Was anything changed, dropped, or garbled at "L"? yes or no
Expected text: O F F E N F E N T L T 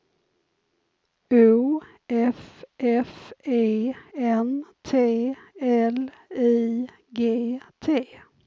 yes